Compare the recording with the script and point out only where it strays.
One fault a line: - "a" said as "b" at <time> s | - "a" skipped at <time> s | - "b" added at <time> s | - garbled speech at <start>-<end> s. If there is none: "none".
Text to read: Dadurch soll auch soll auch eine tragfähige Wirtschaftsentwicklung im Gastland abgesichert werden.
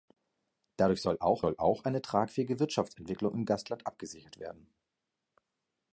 none